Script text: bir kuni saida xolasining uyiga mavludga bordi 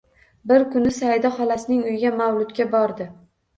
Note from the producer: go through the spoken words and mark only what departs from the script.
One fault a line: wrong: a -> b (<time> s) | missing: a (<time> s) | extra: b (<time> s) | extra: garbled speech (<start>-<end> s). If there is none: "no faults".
no faults